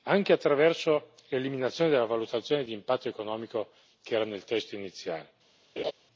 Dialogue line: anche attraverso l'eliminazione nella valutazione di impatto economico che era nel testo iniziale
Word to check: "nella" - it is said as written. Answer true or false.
false